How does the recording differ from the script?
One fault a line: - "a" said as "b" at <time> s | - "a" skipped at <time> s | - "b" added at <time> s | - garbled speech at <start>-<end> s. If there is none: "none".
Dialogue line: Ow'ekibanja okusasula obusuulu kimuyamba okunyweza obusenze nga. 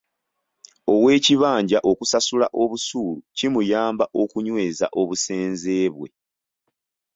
- "nga" said as "bwe" at 5.9 s